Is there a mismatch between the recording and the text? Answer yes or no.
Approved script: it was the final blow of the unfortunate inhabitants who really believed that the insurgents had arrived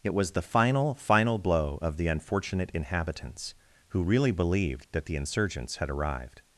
yes